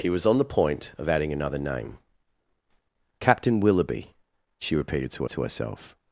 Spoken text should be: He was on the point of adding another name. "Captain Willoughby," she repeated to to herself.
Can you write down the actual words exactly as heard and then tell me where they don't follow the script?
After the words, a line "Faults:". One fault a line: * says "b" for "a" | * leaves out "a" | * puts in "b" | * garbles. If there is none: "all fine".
He was on the point of adding another name. "Captain Willoughby," she repeated to to herself.
Faults:
all fine